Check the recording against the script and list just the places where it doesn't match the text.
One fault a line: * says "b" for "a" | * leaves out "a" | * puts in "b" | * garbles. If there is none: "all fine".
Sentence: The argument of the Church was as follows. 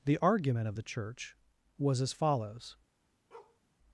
all fine